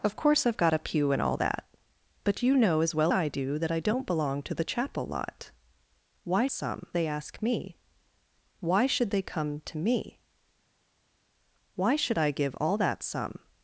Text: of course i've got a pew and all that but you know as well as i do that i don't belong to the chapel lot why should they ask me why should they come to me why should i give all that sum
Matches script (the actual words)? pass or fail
fail